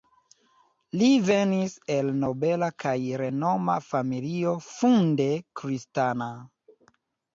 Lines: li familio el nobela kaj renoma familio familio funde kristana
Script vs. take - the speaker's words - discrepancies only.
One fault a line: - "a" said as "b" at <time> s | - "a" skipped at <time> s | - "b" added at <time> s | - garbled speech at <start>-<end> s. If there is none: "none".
- "familio" said as "venis" at 1.2 s
- "familio" skipped at 4.6 s